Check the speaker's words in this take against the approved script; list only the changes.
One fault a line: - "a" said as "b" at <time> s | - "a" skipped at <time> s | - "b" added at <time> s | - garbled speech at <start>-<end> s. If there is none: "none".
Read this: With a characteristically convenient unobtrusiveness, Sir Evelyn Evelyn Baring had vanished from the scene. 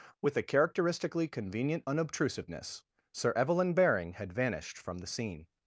- "Evelyn" skipped at 3.7 s